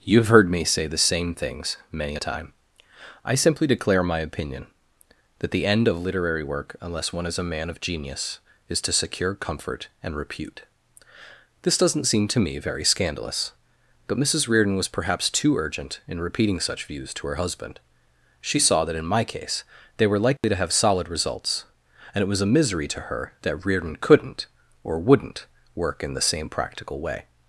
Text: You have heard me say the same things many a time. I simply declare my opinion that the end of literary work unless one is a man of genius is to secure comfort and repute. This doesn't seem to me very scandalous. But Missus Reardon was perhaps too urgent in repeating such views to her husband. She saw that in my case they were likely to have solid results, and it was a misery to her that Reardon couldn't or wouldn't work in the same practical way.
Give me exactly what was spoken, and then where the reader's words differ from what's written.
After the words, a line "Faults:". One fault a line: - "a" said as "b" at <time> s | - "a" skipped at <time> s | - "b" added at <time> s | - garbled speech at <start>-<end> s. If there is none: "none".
You have heard me say the same things many a time. I simply declare my opinion that the end of literary work unless one is a man of genius is to secure comfort and repute. This doesn't seem to me very scandalous. But Missus Reardon was perhaps too urgent in repeating such views to her husband. She saw that in my case they were likely to have solid results, and it was a misery to her that Reardon couldn't or wouldn't work in the same practical way.
Faults:
none